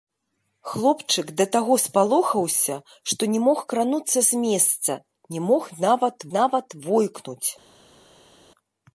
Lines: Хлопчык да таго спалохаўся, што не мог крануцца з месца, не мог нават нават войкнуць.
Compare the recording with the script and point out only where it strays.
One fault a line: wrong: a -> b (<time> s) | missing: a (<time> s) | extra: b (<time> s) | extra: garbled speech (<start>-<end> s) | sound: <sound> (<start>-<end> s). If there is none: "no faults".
no faults